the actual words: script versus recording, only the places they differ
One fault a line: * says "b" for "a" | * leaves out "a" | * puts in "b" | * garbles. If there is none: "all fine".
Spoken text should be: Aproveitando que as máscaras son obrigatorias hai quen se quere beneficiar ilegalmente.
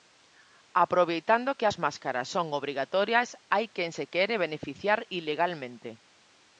all fine